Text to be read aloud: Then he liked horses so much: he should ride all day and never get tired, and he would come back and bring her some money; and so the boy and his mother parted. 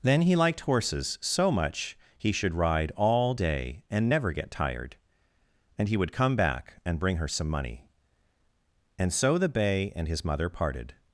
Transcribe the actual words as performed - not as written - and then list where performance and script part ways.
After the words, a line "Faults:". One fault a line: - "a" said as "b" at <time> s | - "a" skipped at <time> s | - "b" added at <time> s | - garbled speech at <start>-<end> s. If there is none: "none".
Then he liked horses so much: he should ride all day and never get tired, and he would come back and bring her some money; and so the bay and his mother parted.
Faults:
- "boy" said as "bay" at 9.5 s